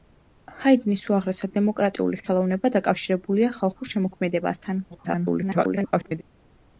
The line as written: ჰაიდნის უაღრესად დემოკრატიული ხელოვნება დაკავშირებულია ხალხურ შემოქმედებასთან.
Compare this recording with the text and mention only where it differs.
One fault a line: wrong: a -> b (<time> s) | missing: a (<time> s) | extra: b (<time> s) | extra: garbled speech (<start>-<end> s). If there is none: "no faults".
extra: garbled speech (4.9-6.2 s)